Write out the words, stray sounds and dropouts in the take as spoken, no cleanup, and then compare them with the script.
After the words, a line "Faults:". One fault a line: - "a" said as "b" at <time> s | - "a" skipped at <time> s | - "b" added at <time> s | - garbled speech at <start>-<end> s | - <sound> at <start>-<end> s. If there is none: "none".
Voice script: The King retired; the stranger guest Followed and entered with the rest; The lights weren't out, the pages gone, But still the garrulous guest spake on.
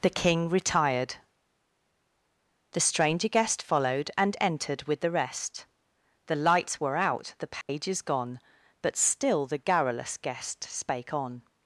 The King retired; the stranger guest Followed and entered with the rest; The lights were out, the pages gone, But still the garrulous guest spake on.
Faults:
- "weren't" said as "were" at 6.8 s
- dropout at 7.6-7.7 s